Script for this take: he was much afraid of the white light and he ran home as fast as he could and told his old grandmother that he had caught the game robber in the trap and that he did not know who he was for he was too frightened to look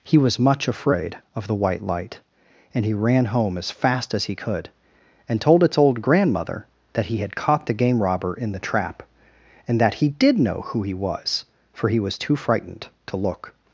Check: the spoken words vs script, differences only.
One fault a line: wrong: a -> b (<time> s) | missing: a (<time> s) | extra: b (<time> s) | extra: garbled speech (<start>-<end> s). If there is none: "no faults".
wrong: his -> its (5.6 s)
missing: not (10.4 s)